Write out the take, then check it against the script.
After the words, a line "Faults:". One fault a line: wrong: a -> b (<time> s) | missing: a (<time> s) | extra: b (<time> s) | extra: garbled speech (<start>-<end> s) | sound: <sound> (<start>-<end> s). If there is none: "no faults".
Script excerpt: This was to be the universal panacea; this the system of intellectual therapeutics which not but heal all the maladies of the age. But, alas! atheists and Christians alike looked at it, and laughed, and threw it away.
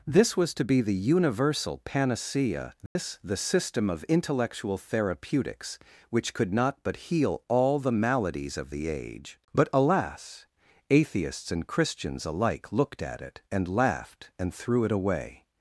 This was to be the universal panacea; this the system of intellectual therapeutics which could not but heal all the maladies of the age. But, alas! atheists and Christians alike looked at it, and laughed, and threw it away.
Faults:
sound: dropout (2.9-3.0 s)
extra: could (6.3 s)